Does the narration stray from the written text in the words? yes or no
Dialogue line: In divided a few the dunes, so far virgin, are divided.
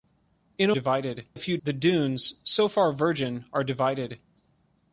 no